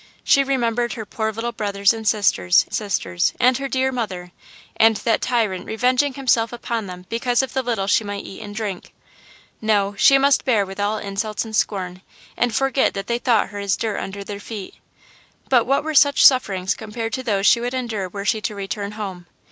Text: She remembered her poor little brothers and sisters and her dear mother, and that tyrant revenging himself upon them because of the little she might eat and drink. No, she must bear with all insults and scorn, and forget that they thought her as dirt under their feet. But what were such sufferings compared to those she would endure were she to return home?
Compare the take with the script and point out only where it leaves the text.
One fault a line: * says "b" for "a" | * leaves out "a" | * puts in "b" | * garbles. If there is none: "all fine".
* puts in "sisters"